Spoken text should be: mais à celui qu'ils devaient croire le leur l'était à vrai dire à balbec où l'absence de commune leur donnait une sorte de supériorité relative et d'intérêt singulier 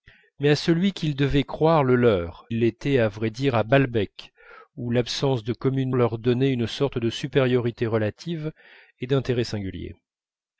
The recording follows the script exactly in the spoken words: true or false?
true